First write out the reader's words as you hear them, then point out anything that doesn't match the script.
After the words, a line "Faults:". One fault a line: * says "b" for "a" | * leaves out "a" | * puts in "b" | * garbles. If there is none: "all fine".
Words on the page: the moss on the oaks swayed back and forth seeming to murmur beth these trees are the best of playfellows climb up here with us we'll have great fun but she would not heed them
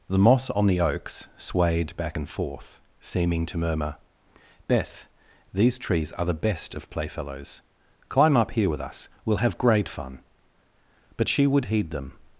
the moss on the oaks swayed back and forth seeming to murmur beth these trees are the best of playfellows climb up here with us we'll have great fun but she would heed them
Faults:
* leaves out "not"